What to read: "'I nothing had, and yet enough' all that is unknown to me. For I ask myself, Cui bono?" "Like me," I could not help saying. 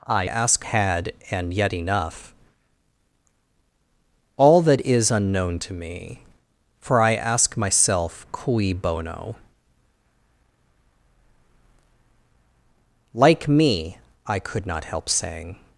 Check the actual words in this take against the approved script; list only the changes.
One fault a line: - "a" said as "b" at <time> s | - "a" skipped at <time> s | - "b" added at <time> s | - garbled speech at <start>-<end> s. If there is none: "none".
- "nothing" said as "ask" at 0.2 s